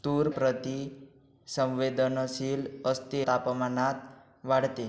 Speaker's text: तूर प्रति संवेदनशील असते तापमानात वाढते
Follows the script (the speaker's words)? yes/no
yes